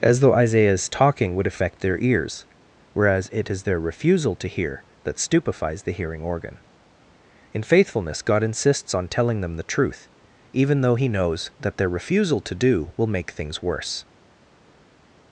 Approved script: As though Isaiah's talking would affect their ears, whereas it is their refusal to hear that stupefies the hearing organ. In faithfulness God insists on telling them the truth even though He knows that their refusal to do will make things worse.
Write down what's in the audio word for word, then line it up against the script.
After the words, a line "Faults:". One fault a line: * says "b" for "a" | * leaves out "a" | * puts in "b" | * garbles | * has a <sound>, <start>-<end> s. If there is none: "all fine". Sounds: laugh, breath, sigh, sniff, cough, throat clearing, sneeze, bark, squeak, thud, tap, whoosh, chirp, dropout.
As though Isaiah's talking would affect their ears, whereas it is their refusal to hear that stupefies the hearing organ. In faithfulness God insists on telling them the truth even though He knows that their refusal to do will make things worse.
Faults:
all fine